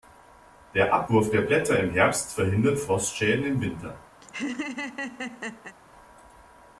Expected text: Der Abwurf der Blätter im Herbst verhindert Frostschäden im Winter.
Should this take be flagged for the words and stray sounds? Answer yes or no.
yes